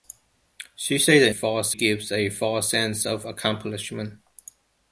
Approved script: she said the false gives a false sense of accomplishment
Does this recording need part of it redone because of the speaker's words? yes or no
no